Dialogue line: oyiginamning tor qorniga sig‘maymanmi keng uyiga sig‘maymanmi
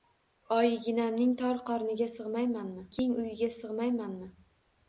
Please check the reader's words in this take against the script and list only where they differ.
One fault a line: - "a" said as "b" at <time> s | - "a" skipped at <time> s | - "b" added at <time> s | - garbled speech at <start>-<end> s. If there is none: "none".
none